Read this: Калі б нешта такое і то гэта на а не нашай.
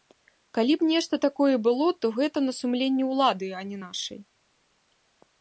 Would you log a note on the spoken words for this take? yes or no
yes